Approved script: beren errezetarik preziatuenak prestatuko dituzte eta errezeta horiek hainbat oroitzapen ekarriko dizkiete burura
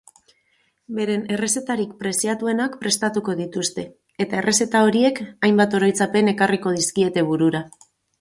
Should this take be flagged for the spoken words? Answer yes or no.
no